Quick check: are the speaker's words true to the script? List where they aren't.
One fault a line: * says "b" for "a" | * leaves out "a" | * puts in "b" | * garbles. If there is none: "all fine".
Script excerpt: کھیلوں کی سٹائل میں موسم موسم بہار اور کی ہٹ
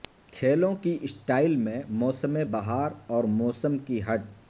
* leaves out "موسم"
* puts in "موسم"